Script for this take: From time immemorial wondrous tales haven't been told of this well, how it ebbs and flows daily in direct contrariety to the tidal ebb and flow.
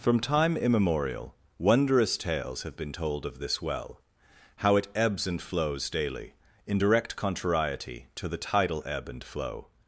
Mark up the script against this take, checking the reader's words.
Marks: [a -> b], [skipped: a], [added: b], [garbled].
From time immemorial wondrous tales [haven't -> have] been told of this well, how it ebbs and flows daily in direct contrariety to the tidal ebb and flow.